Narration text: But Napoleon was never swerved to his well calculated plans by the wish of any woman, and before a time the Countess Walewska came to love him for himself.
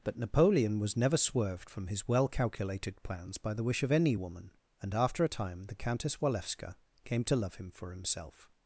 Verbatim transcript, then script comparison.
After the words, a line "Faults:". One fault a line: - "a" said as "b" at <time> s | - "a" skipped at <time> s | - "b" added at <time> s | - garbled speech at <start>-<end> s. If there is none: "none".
But Napoleon was never swerved from his well calculated plans by the wish of any woman, and after a time the Countess Walewska came to love him for himself.
Faults:
- "to" said as "from" at 1.7 s
- "before" said as "after" at 4.9 s